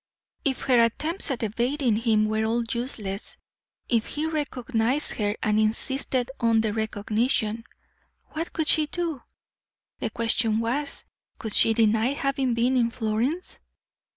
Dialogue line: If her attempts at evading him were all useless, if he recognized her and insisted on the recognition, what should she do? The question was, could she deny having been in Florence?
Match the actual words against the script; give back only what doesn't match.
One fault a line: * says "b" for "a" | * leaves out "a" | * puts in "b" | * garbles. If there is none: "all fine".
* says "could" for "should"